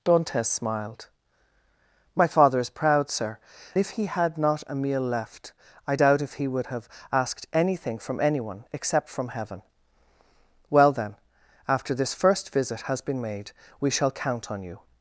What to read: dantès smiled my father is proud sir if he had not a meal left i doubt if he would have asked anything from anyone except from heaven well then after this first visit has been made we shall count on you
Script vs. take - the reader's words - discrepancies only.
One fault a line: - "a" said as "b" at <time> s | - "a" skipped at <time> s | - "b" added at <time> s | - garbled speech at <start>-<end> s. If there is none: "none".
none